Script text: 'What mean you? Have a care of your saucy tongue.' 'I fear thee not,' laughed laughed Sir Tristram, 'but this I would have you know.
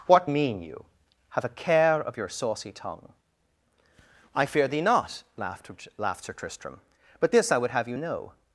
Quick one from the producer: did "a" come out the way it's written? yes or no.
yes